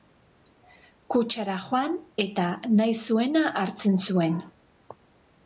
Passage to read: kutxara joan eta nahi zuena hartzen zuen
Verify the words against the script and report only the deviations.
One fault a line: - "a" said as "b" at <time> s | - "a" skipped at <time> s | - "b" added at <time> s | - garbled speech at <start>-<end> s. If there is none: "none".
none